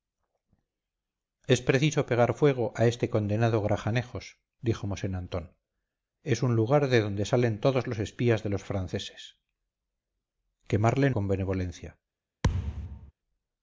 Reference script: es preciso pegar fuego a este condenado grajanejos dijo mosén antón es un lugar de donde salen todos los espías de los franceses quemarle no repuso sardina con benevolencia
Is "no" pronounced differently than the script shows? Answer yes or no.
yes